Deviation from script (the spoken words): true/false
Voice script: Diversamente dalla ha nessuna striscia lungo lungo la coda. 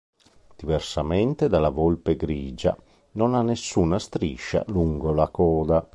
true